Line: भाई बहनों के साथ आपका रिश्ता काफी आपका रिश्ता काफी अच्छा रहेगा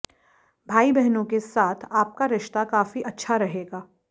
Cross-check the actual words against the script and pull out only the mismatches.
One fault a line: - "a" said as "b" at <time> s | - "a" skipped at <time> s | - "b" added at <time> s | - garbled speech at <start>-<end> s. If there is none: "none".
- "आपका रिश्ता काफी" skipped at 3.0 s